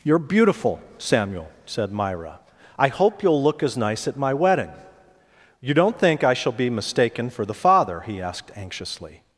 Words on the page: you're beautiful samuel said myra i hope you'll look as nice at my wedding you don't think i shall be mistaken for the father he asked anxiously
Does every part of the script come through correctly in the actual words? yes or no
yes